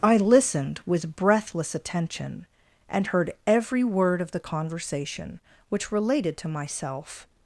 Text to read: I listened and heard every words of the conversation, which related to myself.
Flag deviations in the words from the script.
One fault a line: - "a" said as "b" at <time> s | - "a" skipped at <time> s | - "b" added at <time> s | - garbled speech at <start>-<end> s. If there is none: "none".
- "with breathless attention" added at 0.8 s
- "words" said as "word" at 3.8 s